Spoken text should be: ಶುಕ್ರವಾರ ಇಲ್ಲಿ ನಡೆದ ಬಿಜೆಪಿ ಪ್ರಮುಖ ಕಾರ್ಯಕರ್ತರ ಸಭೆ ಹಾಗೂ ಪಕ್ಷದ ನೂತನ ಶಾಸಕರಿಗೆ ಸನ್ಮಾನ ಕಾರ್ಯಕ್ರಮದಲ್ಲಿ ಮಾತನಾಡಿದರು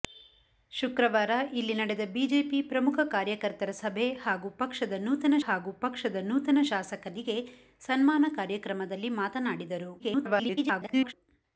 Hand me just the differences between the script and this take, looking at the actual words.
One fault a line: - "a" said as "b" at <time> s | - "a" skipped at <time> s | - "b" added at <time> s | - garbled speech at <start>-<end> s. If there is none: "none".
- "ಹಾಗೂ ಪಕ್ಷದ ನೂತನ" added at 5.4 s
- garbled speech at 10.0-11.1 s